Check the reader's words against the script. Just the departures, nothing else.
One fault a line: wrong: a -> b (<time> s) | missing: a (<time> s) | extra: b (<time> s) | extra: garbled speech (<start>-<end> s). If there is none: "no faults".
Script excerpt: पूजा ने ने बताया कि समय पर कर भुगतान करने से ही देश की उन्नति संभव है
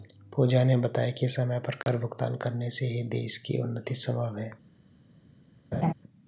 missing: ने (0.8 s)